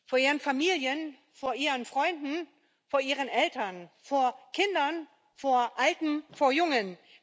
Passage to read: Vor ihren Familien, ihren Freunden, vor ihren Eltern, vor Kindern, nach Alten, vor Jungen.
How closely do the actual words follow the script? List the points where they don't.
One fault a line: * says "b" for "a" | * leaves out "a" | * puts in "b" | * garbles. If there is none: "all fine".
* puts in "vor"
* says "vor" for "nach"